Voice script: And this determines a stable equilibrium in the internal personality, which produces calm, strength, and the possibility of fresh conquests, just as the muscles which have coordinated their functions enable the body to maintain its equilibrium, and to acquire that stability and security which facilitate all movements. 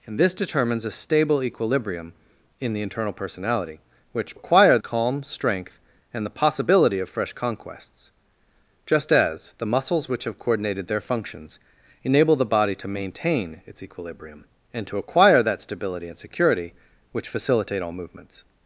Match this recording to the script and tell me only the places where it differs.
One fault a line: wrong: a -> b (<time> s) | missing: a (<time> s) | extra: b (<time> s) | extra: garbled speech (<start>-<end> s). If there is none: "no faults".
wrong: produces -> acquire (4.3 s)